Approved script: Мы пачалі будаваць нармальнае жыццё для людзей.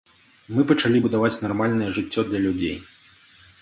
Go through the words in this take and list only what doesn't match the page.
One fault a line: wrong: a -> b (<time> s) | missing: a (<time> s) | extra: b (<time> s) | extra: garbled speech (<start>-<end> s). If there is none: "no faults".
no faults